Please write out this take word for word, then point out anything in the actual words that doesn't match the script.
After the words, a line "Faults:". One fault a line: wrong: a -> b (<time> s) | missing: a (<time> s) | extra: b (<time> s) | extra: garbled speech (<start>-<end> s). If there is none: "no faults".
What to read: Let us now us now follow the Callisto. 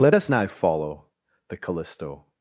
Let us now follow the Callisto.
Faults:
missing: us now (0.4 s)